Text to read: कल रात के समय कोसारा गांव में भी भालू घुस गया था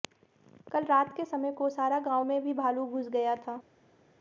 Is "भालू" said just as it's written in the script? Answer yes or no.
yes